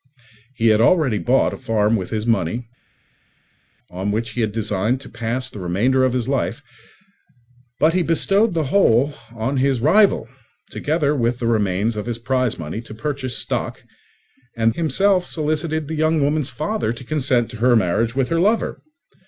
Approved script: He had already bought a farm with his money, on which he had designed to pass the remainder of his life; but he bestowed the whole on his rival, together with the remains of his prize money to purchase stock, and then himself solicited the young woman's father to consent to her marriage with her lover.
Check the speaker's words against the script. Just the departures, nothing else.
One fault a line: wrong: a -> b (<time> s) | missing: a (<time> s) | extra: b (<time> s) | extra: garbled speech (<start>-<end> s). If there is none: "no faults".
missing: then (14.7 s)